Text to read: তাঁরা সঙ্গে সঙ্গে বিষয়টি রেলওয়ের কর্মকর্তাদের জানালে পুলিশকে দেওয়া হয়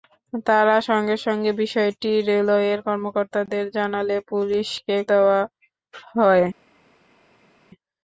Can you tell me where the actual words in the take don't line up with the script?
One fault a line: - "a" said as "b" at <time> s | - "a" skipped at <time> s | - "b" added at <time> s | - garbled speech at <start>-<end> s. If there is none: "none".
none